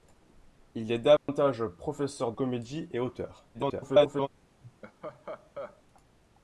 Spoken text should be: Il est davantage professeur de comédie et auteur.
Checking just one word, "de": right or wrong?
wrong